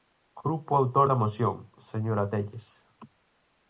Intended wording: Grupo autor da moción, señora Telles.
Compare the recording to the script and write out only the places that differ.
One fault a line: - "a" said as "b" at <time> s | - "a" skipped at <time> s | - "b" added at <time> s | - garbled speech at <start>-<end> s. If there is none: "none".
none